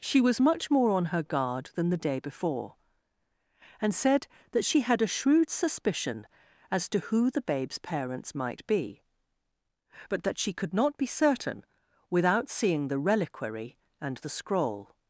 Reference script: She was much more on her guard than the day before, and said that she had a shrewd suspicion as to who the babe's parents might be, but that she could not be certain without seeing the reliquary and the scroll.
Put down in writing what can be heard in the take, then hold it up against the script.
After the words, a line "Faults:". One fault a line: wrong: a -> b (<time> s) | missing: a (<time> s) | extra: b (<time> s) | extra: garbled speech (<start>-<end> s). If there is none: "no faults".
She was much more on her guard than the day before, and said that she had a shrewd suspicion as to who the babe's parents might be, but that she could not be certain without seeing the reliquary and the scroll.
Faults:
no faults